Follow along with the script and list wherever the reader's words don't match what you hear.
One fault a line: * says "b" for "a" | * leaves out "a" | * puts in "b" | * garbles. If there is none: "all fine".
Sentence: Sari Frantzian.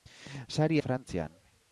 all fine